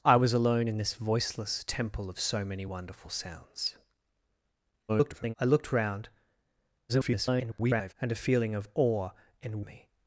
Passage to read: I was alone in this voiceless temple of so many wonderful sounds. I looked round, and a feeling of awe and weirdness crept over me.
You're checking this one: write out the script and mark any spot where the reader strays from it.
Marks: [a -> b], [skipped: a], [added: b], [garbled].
I was alone in this voiceless temple of so many wonderful sounds. [garbled] I looked round, [garbled] and a feeling of awe and [skipped: weirdness crept over] me.